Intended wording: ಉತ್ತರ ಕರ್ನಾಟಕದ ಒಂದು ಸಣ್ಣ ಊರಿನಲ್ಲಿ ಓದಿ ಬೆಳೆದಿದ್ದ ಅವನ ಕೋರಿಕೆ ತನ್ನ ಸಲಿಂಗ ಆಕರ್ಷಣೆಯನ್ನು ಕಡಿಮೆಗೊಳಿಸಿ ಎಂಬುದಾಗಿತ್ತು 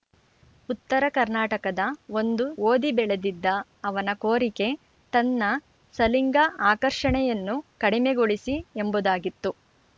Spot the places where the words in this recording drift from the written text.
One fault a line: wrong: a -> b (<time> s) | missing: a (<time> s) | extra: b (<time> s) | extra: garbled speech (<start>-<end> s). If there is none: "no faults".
missing: ಸಣ್ಣ ಊರಿನಲ್ಲಿ (2.5 s)